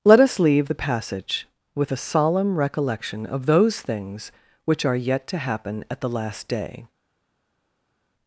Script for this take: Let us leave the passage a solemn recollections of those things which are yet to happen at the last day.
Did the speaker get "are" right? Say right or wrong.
right